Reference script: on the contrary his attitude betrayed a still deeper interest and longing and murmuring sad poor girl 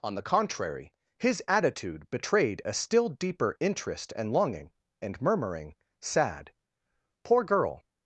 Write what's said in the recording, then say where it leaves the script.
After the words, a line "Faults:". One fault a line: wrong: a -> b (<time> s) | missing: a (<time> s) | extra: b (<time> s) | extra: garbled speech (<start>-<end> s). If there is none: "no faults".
on the contrary his attitude betrayed a still deeper interest and longing and murmuring sad poor girl
Faults:
no faults